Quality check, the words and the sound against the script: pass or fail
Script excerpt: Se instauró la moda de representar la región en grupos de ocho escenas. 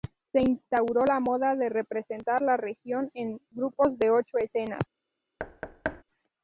fail